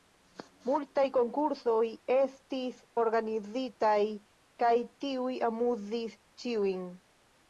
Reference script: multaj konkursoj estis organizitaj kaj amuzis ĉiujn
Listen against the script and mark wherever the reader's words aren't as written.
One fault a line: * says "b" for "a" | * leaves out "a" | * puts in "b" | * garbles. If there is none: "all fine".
* puts in "tiuj"